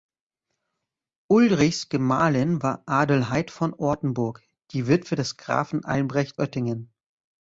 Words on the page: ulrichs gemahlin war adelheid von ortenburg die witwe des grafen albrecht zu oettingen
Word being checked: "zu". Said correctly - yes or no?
no